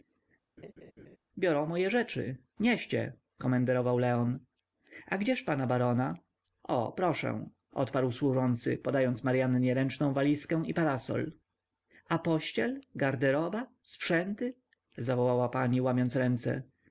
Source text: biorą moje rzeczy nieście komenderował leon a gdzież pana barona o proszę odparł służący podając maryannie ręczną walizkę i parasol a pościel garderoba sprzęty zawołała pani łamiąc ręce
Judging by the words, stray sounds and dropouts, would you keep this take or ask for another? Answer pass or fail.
fail